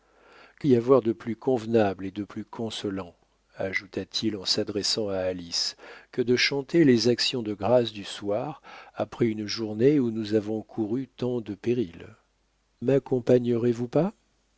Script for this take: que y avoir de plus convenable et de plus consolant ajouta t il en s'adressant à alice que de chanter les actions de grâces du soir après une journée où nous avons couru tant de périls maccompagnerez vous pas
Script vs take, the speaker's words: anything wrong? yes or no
no